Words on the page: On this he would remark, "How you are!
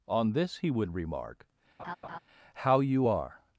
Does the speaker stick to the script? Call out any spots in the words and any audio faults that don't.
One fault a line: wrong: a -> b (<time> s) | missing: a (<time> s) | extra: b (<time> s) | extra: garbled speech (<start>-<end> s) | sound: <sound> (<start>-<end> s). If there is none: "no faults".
sound: laugh (1.8-2.2 s)